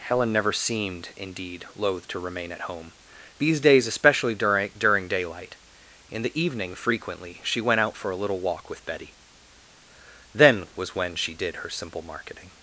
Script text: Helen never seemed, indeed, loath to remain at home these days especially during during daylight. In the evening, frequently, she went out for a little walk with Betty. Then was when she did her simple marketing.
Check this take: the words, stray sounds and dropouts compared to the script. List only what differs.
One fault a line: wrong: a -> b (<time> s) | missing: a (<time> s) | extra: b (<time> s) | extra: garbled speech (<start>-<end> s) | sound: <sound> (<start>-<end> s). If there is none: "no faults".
no faults